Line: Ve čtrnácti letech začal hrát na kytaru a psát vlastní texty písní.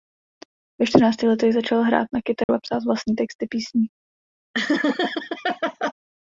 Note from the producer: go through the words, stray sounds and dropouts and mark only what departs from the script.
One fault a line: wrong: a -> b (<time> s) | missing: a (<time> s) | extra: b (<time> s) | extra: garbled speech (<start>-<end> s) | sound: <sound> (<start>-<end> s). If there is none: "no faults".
sound: dropout (2.4-2.5 s)
sound: laugh (4.5-5.9 s)